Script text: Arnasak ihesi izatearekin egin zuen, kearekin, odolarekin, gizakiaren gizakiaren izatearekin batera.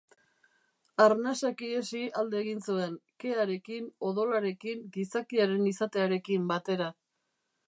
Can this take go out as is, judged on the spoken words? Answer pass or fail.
fail